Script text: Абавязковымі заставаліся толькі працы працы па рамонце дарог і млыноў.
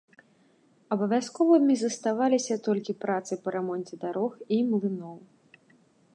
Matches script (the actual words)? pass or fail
fail